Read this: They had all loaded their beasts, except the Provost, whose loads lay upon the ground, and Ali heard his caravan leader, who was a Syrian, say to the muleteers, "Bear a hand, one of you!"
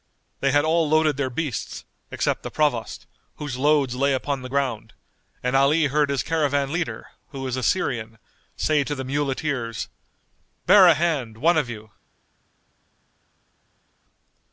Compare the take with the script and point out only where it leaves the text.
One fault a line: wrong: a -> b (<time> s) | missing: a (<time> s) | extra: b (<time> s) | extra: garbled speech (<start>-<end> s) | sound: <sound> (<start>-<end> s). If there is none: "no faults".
no faults